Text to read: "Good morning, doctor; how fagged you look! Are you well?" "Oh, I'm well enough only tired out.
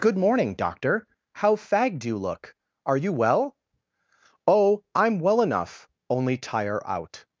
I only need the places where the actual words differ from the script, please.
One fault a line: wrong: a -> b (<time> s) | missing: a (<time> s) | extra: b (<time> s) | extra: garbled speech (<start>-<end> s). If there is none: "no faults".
wrong: tired -> tire (6.4 s)